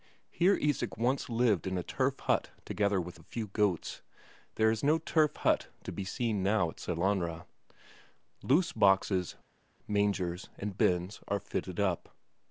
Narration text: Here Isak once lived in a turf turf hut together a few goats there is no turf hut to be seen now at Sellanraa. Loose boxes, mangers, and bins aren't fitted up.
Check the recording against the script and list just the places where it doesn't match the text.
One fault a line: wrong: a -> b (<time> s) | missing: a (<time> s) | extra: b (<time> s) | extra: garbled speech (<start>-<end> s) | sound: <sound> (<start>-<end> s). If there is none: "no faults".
missing: turf (2.2 s)
extra: with (3.0 s)
wrong: aren't -> are (11.3 s)